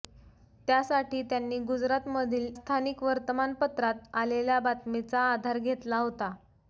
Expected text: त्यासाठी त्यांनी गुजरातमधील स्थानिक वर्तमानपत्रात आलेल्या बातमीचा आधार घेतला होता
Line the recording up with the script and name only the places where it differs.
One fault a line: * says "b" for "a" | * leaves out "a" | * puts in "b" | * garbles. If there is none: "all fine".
all fine